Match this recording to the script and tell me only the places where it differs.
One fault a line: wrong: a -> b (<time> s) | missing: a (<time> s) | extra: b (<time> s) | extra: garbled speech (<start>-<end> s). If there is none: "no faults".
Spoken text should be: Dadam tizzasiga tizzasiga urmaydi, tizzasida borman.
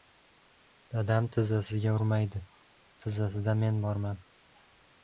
missing: tizzasiga (1.9 s)
extra: men (3.7 s)